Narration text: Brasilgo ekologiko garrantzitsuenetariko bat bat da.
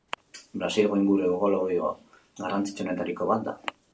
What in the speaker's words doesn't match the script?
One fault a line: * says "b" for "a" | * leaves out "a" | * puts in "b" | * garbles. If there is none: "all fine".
* puts in "inguru"
* leaves out "bat"